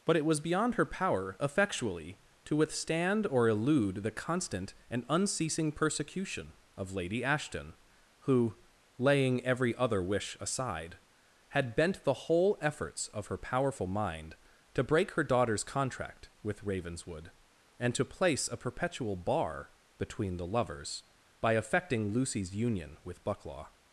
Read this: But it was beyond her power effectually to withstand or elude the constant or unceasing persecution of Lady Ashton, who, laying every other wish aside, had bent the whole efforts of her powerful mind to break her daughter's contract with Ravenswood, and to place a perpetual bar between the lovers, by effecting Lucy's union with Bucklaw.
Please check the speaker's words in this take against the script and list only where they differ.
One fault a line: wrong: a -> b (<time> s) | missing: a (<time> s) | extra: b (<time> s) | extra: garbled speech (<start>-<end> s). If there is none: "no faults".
wrong: or -> and (4.9 s)